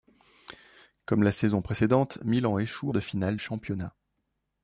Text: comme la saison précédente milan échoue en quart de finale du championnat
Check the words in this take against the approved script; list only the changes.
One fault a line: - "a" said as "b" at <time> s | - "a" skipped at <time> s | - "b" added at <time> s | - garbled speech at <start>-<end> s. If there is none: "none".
- "en quart" skipped at 2.9 s
- "du" skipped at 3.4 s